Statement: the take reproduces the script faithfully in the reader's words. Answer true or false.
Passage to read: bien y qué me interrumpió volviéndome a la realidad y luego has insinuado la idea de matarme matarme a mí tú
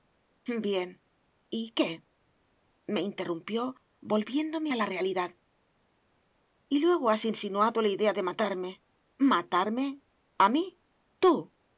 true